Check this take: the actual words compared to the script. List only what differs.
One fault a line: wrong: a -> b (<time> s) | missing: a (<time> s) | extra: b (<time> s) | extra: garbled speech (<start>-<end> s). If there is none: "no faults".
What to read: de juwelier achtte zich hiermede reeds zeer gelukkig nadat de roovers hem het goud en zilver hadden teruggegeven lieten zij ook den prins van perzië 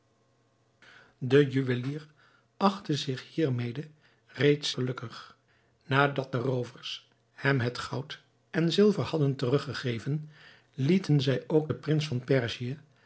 missing: zeer (4.7 s)